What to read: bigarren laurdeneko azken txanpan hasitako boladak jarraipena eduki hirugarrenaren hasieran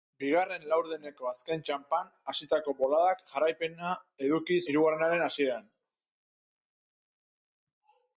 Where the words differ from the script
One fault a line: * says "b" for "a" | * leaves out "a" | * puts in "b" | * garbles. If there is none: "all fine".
all fine